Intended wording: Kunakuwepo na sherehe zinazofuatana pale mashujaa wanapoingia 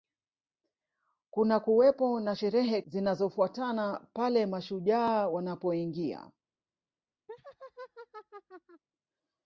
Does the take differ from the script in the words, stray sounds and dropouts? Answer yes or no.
yes